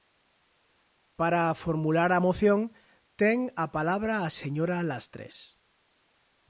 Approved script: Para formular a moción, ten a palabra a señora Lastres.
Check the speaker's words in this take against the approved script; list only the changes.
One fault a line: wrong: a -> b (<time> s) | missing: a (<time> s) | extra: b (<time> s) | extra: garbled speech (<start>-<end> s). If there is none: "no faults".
no faults